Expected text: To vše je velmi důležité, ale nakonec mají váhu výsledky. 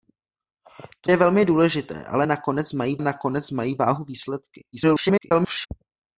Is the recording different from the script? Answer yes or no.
yes